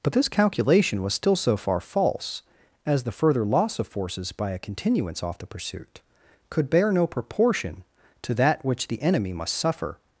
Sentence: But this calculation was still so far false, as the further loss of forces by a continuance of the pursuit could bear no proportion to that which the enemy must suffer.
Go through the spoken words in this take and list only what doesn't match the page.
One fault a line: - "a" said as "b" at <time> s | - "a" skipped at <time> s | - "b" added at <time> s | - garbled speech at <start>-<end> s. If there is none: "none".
- "of" said as "off" at 5.2 s